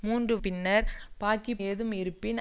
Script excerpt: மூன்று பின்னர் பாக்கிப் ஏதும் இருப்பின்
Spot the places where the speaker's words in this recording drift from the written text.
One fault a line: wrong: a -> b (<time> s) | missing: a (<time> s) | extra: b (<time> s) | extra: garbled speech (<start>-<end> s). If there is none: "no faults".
no faults